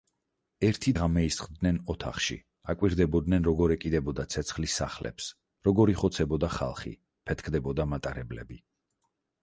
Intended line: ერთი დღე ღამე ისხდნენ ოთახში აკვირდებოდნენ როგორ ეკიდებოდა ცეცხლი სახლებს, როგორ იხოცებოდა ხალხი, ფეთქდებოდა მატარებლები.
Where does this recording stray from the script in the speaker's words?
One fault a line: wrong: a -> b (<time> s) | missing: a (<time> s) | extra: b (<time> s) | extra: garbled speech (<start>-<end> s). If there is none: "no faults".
missing: დღე (0.9 s)